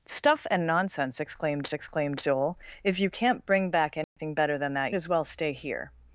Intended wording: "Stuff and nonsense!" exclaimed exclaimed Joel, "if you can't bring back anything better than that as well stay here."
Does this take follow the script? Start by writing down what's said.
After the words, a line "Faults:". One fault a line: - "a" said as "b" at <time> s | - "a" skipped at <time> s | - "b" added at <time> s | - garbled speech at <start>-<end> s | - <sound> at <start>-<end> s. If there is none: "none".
"Stuff and nonsense!" exclaimed exclaimed Joel, "if you can't bring back anything better than that as well stay here."
Faults:
- dropout at 4.0-4.2 s